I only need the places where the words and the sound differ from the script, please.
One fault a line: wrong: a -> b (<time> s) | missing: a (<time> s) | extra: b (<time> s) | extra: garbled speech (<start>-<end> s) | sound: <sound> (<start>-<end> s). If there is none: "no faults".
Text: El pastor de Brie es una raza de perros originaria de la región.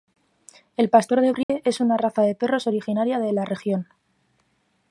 sound: dropout (1.4-1.5 s)